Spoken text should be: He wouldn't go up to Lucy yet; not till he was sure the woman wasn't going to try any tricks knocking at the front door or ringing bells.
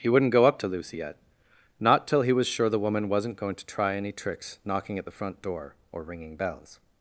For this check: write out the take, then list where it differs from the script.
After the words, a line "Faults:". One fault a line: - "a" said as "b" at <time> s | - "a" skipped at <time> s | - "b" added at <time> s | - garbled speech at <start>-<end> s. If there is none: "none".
He wouldn't go up to Lucy yet; not till he was sure the woman wasn't going to try any tricks knocking at the front door or ringing bells.
Faults:
none